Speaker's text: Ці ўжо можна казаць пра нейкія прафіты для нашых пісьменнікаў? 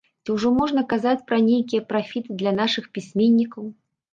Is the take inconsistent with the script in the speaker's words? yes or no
no